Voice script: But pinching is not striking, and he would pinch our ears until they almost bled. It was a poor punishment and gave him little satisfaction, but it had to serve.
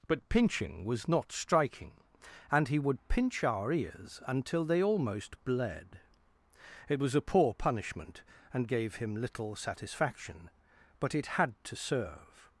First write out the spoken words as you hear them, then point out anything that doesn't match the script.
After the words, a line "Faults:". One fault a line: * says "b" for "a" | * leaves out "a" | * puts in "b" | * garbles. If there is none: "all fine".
But pinching was not striking, and he would pinch our ears until they almost bled. It was a poor punishment and gave him little satisfaction, but it had to serve.
Faults:
* says "was" for "is"